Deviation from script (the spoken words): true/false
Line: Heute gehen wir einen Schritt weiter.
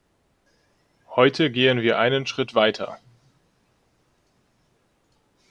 false